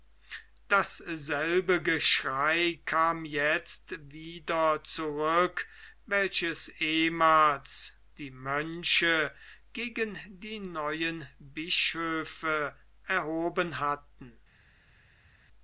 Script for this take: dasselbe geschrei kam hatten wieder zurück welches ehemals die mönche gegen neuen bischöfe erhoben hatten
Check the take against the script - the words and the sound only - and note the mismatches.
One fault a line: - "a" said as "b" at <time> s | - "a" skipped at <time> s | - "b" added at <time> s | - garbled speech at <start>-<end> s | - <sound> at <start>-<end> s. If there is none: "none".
- "hatten" said as "jetzt" at 3.2 s
- "die" added at 10.3 s